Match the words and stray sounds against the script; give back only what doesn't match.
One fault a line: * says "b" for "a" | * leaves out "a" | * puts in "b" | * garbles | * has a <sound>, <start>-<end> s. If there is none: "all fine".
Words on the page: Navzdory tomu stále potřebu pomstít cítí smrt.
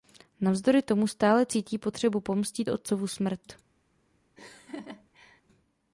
* puts in "cítí"
* says "otcovu" for "cítí"
* has a laugh, 4.4-5.4 s